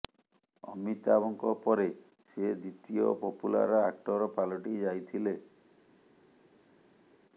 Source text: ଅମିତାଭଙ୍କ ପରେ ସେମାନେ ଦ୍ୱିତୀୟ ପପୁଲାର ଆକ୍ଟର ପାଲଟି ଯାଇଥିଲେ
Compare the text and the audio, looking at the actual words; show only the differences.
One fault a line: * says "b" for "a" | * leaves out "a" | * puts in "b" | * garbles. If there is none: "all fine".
* says "ସେ" for "ସେମାନେ"